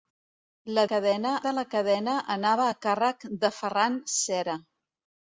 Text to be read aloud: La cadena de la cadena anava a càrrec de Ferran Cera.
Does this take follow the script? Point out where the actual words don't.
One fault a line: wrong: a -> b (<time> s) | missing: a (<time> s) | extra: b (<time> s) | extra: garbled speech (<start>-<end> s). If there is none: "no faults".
no faults